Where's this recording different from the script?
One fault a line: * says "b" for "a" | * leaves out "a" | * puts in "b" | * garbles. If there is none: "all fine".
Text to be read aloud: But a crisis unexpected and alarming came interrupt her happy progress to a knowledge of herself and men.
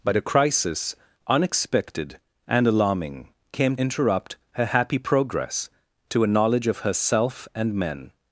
all fine